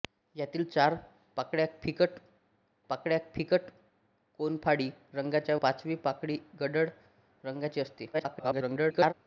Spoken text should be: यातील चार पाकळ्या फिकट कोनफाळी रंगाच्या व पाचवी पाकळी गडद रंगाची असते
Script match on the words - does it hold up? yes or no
no